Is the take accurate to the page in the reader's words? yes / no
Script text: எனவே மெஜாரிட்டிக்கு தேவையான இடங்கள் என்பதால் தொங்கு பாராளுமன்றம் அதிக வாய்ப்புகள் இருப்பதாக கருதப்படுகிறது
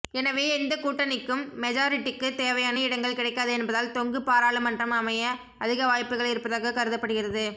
no